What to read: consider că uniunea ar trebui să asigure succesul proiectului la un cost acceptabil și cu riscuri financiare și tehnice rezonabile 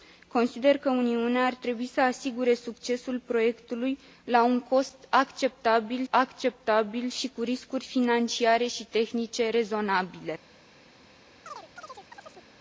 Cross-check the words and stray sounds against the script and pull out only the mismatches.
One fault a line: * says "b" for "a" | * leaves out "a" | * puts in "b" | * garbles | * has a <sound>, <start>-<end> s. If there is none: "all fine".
* puts in "acceptabil"
* has a chirp, 11.5-12.5 s